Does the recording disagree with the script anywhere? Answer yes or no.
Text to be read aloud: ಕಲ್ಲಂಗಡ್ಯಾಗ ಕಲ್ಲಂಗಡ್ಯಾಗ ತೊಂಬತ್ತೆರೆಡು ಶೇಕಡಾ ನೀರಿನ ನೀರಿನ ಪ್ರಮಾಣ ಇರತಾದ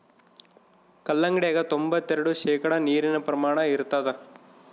yes